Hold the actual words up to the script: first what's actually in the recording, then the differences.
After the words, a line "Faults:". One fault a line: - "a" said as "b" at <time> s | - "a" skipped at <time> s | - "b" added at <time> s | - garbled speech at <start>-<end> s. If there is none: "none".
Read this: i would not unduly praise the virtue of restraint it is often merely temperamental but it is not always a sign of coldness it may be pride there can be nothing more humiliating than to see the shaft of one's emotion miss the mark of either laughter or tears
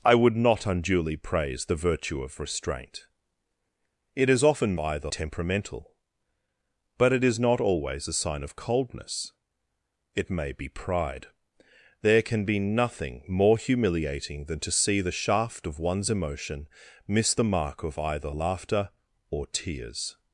i would not unduly praise the virtue of restraint it is often either temperamental but it is not always a sign of coldness it may be pride there can be nothing more humiliating than to see the shaft of one's emotion miss the mark of either laughter or tears
Faults:
- "merely" said as "either" at 4.8 s